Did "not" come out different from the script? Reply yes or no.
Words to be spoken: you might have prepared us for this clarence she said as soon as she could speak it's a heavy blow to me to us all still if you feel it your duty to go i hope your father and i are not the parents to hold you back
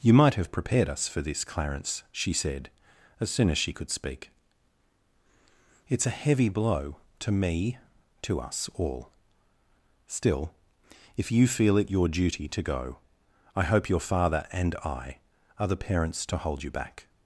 yes